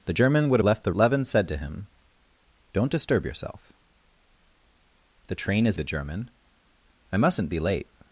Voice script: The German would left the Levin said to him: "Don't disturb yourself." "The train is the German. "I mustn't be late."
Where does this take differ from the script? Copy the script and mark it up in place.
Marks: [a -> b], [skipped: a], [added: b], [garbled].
The German would left the Levin said to him: "Don't disturb yourself." "The train is the German. "I mustn't be late."